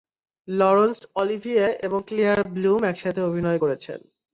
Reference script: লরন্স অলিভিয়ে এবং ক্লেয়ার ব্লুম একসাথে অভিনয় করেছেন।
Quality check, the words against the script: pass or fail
pass